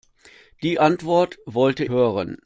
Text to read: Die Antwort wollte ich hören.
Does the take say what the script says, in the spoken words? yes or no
no